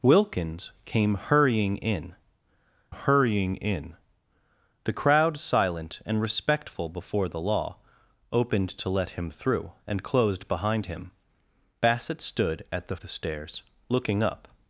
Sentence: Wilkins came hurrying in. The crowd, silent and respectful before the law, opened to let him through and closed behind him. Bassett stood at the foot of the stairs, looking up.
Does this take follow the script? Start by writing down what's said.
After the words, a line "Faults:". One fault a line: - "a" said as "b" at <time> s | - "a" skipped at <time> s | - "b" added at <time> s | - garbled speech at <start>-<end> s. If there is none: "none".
Wilkins came hurrying in hurrying in. The crowd, silent and respectful before the law, opened to let him through and closed behind him. Bassett stood at the the stairs, looking up.
Faults:
- "hurrying in" added at 2.9 s
- "foot of" skipped at 13.0 s